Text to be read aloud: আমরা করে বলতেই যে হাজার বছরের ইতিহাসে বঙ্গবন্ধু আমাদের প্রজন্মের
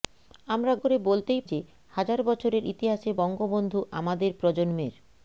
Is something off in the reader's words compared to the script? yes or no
no